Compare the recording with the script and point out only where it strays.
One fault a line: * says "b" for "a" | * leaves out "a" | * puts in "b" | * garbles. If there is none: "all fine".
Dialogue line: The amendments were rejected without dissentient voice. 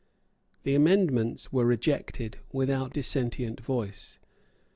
all fine